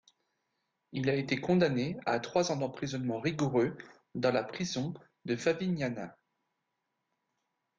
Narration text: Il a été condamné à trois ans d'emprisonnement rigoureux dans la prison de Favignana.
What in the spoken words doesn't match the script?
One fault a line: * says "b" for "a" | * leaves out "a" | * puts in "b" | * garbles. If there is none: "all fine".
all fine